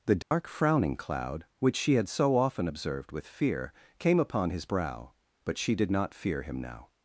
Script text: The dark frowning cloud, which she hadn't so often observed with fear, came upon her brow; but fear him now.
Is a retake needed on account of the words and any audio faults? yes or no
yes